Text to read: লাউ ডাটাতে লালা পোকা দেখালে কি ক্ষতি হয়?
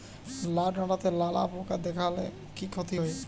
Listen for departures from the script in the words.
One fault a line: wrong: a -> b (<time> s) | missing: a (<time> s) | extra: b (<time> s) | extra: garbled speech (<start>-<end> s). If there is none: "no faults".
no faults